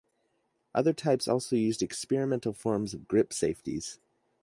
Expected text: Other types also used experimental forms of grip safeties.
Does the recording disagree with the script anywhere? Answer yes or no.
no